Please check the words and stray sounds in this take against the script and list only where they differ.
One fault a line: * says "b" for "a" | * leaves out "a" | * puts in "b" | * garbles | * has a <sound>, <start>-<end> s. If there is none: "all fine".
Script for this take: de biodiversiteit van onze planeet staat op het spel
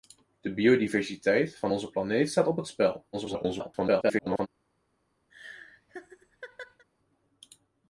* garbles
* has a laugh, 5.3-6.8 s